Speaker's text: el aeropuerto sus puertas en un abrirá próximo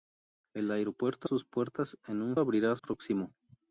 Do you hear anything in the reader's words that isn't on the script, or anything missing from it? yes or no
no